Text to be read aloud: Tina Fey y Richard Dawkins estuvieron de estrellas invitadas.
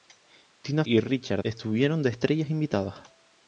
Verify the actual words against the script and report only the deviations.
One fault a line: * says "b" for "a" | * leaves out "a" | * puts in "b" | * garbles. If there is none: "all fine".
* leaves out "Fey"
* leaves out "Dawkins"